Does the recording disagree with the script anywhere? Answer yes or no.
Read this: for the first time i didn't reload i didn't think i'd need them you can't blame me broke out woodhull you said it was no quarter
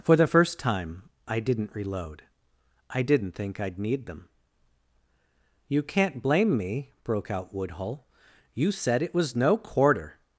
no